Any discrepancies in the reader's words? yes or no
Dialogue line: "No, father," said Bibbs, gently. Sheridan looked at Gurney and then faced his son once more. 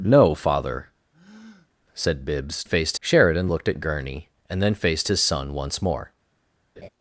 yes